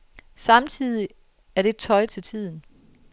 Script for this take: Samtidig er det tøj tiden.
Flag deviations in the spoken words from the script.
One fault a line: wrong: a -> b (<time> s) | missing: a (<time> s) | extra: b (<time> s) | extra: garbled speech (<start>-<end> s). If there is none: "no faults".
extra: til (2.0 s)